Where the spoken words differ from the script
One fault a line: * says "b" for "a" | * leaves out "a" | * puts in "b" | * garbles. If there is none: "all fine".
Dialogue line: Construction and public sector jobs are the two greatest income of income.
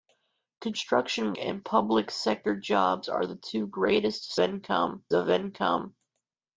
all fine